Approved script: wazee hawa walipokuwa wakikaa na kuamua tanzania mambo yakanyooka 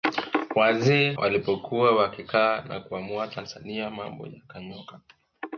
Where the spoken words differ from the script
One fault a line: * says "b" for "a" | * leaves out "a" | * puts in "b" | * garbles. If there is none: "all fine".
* leaves out "hawa"